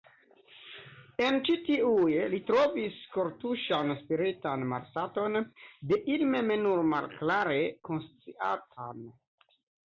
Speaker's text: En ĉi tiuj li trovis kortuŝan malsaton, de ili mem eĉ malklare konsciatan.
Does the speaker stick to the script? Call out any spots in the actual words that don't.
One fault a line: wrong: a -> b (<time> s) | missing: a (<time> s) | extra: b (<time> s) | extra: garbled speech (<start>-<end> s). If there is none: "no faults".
extra: spiritan (4.0 s)
wrong: eĉ -> nur (6.7 s)